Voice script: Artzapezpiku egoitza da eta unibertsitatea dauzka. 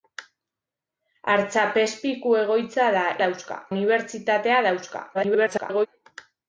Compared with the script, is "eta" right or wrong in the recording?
wrong